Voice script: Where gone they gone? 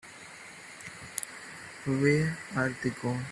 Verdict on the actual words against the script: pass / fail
fail